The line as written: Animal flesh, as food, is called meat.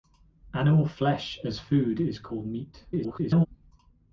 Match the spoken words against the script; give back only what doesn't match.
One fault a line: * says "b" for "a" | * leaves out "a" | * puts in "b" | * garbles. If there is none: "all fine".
* garbles